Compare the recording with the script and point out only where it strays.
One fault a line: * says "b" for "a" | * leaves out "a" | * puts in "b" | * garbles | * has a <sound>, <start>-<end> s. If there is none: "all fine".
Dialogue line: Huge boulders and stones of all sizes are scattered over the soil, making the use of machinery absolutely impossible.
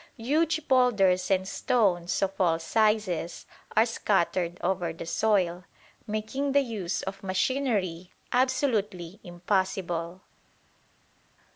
all fine